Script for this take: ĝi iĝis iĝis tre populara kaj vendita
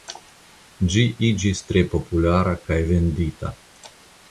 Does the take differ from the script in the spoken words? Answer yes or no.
yes